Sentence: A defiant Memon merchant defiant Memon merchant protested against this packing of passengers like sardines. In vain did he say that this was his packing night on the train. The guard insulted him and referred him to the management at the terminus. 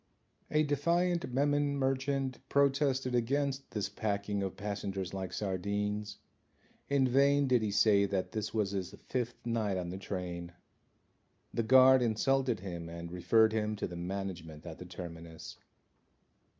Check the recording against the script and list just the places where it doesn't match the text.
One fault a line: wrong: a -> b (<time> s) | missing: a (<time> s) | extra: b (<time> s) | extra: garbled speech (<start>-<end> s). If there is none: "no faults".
missing: defiant Memon merchant (2.4 s)
wrong: packing -> fifth (8.9 s)